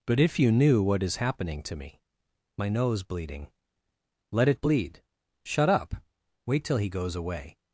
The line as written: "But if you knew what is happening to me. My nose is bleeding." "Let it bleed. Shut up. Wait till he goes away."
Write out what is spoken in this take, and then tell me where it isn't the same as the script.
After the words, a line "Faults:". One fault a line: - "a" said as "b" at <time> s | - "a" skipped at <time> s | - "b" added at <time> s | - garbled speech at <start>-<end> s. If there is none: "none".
"But if you knew what is happening to me. My nose bleeding." "Let it bleed. Shut up. Wait till he goes away."
Faults:
- "is" skipped at 3.0 s